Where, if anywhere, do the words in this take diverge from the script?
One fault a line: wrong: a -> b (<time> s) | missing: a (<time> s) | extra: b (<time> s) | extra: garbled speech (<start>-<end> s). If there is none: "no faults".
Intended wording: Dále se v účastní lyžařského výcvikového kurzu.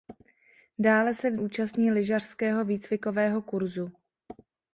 no faults